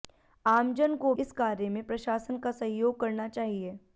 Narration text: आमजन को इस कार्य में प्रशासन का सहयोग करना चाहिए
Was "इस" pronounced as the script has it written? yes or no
yes